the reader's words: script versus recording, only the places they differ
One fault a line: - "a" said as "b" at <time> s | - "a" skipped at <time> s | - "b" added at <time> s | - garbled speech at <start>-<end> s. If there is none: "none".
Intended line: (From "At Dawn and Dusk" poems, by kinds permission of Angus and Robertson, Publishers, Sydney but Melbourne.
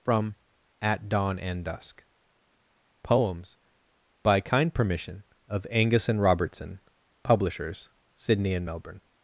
- "kinds" said as "kind" at 4.4 s
- "but" said as "and" at 8.6 s